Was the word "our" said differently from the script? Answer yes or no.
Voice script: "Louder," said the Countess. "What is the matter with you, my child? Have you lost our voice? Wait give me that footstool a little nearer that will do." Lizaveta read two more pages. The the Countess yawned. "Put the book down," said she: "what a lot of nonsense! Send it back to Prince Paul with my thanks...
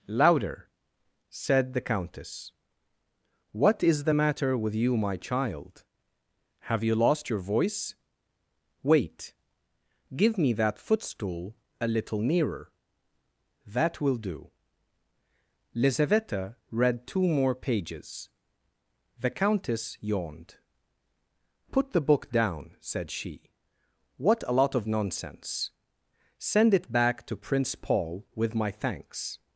yes